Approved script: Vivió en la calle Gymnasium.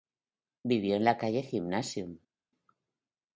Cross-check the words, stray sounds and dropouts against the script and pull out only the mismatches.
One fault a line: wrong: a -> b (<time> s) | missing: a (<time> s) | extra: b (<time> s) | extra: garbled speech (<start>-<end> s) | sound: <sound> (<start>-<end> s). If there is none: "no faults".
no faults